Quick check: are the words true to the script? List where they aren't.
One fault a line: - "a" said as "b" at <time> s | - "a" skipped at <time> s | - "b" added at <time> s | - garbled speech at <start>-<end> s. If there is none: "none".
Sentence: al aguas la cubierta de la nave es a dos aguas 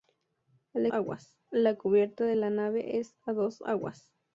none